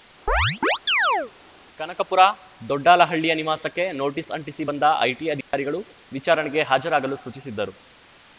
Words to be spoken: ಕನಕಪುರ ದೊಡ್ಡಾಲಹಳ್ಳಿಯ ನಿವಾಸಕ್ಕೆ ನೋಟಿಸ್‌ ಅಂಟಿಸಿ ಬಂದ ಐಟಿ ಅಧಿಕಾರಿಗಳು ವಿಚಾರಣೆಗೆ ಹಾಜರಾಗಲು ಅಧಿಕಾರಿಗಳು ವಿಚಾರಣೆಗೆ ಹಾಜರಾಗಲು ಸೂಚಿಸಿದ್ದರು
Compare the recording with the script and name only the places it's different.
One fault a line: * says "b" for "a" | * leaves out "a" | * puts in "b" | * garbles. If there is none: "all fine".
* leaves out "ಅಧಿಕಾರಿಗಳು ವಿಚಾರಣೆಗೆ ಹಾಜರಾಗಲು"